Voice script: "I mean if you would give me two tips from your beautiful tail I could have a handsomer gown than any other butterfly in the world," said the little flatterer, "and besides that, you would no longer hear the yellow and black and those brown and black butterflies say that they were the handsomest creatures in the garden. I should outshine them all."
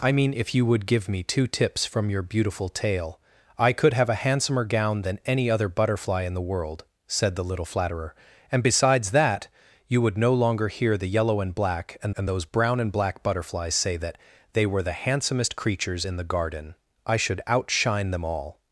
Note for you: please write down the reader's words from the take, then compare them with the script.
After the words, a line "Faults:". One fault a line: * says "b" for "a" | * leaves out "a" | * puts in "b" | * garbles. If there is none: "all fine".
"I mean if you would give me two tips from your beautiful tail I could have a handsomer gown than any other butterfly in the world," said the little flatterer, "and besides that, you would no longer hear the yellow and black and and those brown and black butterflies say that they were the handsomest creatures in the garden. I should outshine them all."
Faults:
* puts in "and"